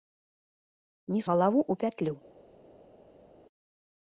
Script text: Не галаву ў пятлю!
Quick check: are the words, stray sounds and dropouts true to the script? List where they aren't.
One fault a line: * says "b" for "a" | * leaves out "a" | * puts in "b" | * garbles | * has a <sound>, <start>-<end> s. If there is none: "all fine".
all fine